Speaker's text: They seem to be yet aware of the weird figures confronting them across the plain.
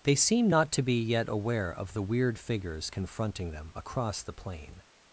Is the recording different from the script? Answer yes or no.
yes